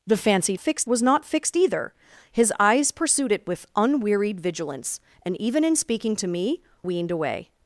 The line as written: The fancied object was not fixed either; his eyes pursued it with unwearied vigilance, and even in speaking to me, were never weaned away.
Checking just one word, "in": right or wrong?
right